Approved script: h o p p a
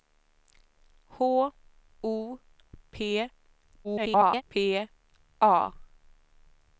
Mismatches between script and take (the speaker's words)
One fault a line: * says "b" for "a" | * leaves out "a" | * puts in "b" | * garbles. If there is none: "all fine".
* garbles